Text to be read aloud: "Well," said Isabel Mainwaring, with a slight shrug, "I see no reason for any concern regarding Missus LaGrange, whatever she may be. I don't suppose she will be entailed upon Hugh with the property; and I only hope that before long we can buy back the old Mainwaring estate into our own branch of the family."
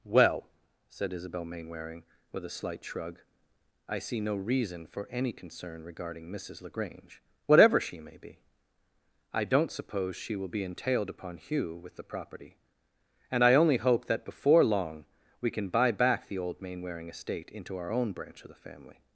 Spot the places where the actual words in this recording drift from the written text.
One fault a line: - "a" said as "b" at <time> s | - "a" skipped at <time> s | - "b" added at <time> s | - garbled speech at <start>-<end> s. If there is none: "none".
none